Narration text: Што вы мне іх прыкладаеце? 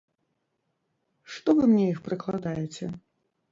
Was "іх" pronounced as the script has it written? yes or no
yes